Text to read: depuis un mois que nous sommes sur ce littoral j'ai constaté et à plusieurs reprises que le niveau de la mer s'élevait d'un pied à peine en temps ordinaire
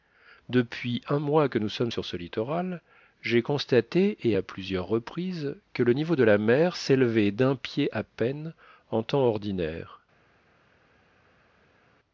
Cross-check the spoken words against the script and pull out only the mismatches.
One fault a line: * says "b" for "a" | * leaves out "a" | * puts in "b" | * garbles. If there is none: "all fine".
all fine